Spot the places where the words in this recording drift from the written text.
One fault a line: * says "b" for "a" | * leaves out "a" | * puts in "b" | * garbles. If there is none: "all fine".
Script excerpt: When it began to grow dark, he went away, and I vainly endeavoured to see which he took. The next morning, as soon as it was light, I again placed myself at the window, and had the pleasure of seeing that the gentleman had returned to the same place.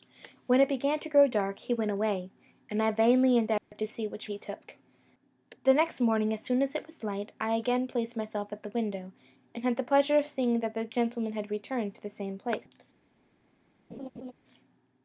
all fine